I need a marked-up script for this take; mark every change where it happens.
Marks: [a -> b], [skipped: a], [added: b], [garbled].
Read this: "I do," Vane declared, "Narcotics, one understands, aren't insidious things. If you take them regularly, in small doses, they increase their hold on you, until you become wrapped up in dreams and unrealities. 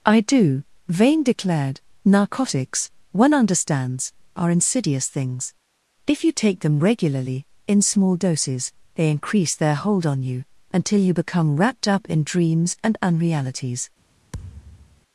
"I do," Vane declared, "Narcotics, one understands, [aren't -> are] insidious things. If you take them regularly, in small doses, they increase their hold on you, until you become wrapped up in dreams and unrealities.